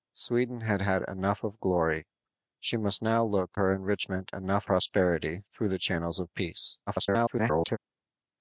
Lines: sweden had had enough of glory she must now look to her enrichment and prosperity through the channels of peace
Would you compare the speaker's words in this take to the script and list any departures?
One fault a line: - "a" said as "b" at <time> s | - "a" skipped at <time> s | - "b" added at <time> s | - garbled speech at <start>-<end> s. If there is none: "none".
- "to" skipped at 3.6 s
- "and" said as "enough" at 4.3 s
- garbled speech at 6.9-7.8 s